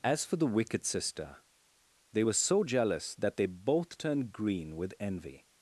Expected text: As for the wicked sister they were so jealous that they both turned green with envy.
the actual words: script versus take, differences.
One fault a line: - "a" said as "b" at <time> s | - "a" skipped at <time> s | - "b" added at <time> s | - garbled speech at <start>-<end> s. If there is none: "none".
none